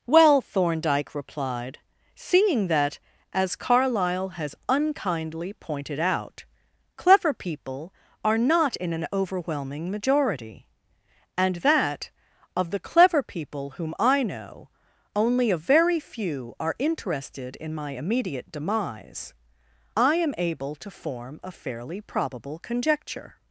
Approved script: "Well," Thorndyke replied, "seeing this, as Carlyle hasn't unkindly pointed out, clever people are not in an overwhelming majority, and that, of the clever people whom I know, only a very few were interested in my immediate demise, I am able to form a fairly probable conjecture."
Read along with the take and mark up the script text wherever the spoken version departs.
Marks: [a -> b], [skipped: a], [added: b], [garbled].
"Well," Thorndyke replied, "seeing [this, -> that] as Carlyle [hasn't -> has] unkindly pointed out, clever people are not in an overwhelming majority, and that, of the clever people whom I know, only a very few [were -> are] interested in my immediate demise, I am able to form a fairly probable conjecture."